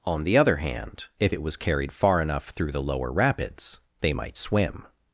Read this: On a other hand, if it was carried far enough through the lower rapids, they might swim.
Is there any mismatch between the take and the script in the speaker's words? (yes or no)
yes